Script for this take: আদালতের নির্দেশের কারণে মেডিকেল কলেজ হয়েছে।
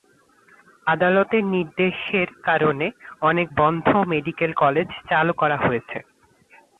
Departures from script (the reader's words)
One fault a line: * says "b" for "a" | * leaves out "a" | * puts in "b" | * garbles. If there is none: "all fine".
* puts in "অনেক বন্ধ"
* puts in "চালু করা"